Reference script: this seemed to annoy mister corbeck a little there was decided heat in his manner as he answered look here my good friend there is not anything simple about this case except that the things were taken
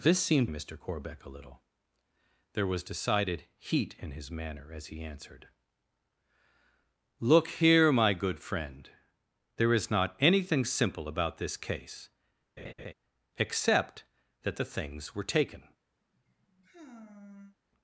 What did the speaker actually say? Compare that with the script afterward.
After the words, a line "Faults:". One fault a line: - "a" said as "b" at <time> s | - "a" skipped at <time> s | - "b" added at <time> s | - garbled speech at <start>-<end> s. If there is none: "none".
this seemed mister corbeck a little there was decided heat in his manner as he answered look here my good friend there is not anything simple about this case except that the things were taken
Faults:
- "to annoy" skipped at 0.5 s